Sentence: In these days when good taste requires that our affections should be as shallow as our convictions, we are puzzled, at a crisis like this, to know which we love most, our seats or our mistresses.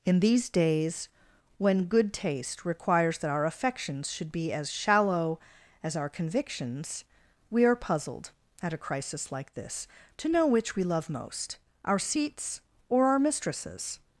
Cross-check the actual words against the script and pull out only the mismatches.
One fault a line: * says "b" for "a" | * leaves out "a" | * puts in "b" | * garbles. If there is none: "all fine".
all fine